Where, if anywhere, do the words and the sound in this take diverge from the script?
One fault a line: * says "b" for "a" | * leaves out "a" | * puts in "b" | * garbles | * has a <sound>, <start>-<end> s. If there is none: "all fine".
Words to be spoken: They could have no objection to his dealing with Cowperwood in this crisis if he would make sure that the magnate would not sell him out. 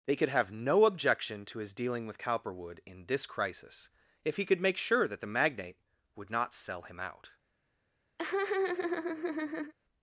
* says "could" for "would"
* has a laugh, 8.2-9.7 s